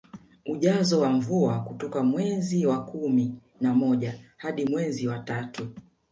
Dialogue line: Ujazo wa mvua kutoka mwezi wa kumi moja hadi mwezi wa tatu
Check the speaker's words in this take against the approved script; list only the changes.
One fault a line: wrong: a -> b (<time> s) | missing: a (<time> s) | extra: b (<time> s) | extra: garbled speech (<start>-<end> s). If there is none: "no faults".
extra: na (3.6 s)